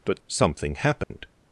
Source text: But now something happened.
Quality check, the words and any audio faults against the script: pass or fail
fail